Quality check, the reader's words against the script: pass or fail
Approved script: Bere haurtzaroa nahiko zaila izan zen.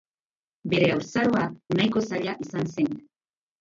pass